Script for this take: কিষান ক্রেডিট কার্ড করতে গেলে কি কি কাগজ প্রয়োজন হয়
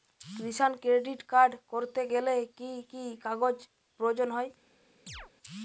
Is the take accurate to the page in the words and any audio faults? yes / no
no